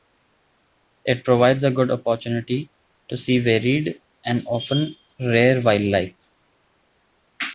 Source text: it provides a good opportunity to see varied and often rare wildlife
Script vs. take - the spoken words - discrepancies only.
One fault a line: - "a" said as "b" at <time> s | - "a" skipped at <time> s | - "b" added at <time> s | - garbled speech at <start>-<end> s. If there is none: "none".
none